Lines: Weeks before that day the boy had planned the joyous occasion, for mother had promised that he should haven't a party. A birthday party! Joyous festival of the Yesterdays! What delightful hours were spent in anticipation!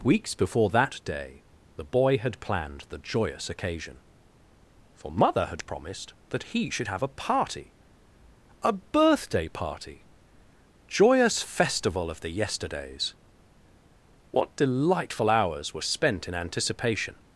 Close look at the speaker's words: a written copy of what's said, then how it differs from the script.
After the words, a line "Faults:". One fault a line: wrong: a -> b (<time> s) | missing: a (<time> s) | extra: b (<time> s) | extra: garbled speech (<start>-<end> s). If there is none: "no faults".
Weeks before that day the boy had planned the joyous occasion, for mother had promised that he should have a party. A birthday party! Joyous festival of the Yesterdays! What delightful hours were spent in anticipation!
Faults:
wrong: haven't -> have (6.9 s)